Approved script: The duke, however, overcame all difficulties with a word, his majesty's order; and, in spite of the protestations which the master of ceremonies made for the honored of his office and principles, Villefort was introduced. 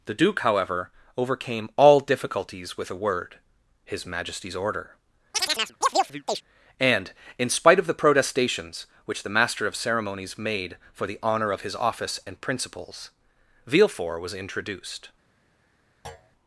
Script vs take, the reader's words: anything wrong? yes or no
yes